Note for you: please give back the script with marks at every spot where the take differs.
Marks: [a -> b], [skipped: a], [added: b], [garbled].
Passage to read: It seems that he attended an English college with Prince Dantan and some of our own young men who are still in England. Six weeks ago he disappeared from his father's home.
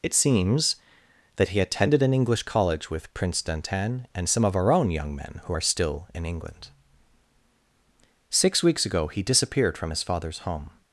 It seems that he attended an English college with Prince Dantan and some of our own young men who are still in England. Six weeks ago he disappeared from his father's home.